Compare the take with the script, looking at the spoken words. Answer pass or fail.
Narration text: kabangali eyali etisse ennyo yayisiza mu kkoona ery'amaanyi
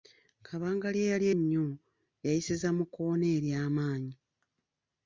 fail